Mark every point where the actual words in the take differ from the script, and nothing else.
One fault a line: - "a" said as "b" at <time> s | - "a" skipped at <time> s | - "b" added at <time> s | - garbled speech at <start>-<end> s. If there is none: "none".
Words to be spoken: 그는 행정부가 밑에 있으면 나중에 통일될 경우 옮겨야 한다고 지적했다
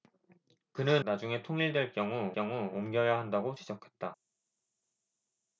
- "행정부가 밑에 있으면" skipped at 1.0 s
- "경우" added at 2.3 s